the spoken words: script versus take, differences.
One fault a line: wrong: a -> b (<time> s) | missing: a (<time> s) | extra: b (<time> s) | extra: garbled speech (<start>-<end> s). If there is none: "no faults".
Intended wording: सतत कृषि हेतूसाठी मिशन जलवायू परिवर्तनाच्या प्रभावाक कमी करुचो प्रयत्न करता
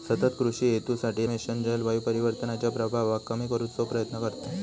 no faults